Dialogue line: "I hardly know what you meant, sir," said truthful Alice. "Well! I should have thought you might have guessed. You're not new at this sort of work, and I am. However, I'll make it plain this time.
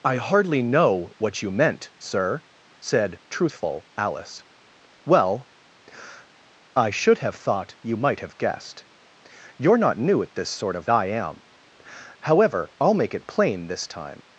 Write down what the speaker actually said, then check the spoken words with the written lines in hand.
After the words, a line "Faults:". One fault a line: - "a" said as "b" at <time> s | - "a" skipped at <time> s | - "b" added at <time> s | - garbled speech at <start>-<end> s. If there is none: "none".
"I hardly know what you meant, sir," said truthful Alice. "Well! I should have thought you might have guessed. You're not new at this sort of I am. However, I'll make it plain this time.
Faults:
- "work and" skipped at 10.9 s